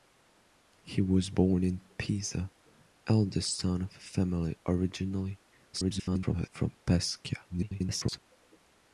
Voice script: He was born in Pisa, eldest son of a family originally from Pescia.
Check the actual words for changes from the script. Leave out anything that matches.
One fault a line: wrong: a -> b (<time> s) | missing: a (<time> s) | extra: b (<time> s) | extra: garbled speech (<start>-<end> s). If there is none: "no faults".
extra: garbled speech (5.7-6.5 s)
extra: garbled speech (7.5-8.2 s)